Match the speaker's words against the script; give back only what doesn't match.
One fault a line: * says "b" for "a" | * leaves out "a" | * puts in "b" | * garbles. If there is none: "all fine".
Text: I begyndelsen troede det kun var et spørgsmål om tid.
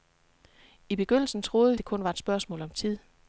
all fine